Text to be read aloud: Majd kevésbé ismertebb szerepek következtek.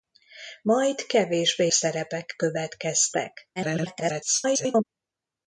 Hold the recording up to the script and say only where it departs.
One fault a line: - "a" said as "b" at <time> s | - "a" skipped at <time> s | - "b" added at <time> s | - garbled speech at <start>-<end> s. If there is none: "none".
- "ismertebb" skipped at 1.7 s
- garbled speech at 3.6-4.9 s